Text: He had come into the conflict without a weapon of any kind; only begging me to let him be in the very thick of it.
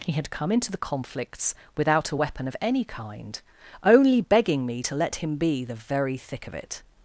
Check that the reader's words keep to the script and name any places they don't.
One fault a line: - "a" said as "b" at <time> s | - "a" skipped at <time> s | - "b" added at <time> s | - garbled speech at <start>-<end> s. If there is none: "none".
- "conflict" said as "conflicts" at 0.8 s
- "in" skipped at 5.6 s